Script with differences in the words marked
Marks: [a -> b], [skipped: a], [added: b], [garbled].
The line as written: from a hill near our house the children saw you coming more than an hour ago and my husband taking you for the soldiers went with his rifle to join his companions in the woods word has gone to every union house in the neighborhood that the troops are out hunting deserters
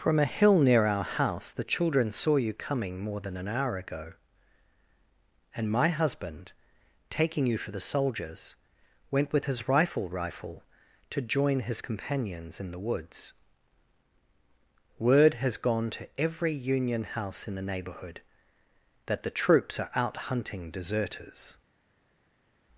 from a hill near our house the children saw you coming more than an hour ago and my husband taking you for the soldiers went with his rifle [added: rifle] to join his companions in the woods word has gone to every union house in the neighborhood that the troops are out hunting deserters